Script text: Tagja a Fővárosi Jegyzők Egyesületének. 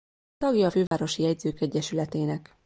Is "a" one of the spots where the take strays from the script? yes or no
no